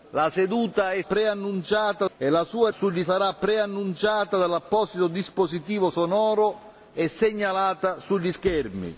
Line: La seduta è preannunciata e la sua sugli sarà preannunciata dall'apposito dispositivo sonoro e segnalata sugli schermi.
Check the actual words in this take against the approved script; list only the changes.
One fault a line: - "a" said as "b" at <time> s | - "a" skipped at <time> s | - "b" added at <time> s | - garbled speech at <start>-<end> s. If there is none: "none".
none